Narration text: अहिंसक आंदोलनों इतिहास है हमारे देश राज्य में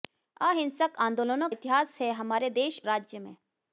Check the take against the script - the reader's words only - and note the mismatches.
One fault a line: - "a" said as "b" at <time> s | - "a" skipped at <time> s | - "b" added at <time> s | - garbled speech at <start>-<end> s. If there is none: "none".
none